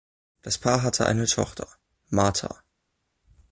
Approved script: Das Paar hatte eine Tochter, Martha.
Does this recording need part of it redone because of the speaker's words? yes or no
no